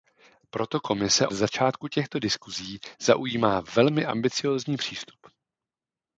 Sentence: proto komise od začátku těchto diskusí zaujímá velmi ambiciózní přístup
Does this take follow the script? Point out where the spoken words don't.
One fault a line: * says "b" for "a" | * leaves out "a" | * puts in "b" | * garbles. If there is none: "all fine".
* leaves out "od"